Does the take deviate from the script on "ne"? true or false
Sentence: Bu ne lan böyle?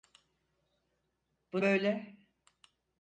true